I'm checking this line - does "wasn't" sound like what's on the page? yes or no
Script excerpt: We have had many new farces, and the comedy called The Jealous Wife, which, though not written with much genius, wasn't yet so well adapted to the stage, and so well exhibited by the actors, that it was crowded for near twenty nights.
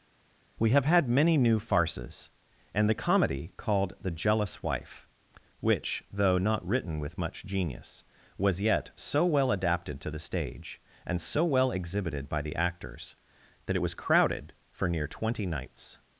no